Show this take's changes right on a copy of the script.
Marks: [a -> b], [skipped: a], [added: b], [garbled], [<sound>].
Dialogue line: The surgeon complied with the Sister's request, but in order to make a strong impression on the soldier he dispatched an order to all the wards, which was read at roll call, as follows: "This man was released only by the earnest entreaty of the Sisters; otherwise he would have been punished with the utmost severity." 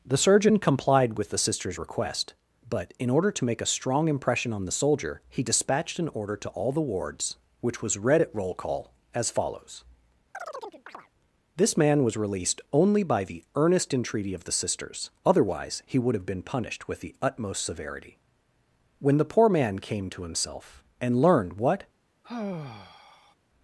The surgeon complied with the Sister's request, but in order to make a strong impression on the soldier he dispatched an order to all the wards, which was read at roll call, as follows: [chirp] "This man was released only by the earnest entreaty of the Sisters; otherwise he would have been punished with the utmost severity." [added: When the poor man came to himself and learned what] [sigh]